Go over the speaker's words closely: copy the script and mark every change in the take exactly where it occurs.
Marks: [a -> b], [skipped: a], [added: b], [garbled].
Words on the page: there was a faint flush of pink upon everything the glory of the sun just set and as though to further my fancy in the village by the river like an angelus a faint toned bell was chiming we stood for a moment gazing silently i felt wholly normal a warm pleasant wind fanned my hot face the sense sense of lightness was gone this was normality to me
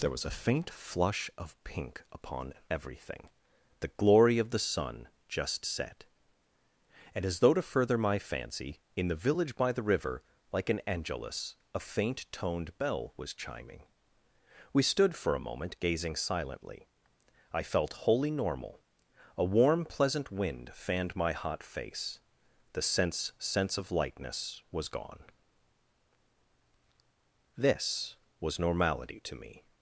there was a faint flush of pink upon everything the glory of the sun just set and as though to further my fancy in the village by the river like an angelus a faint toned bell was chiming we stood for a moment gazing silently i felt wholly normal a warm pleasant wind fanned my hot face the sense sense of lightness was gone this was normality to me